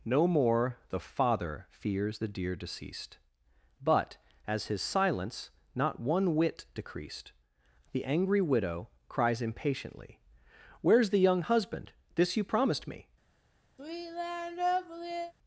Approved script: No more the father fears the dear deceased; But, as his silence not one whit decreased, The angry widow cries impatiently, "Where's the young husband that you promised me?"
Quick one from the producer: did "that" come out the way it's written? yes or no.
no